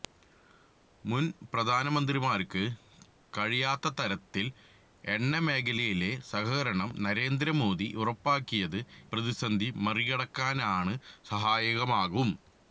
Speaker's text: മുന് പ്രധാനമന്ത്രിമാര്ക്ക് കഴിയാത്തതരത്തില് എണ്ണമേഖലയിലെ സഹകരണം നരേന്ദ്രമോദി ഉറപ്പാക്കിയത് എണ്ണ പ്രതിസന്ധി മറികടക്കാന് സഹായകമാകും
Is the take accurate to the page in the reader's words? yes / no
no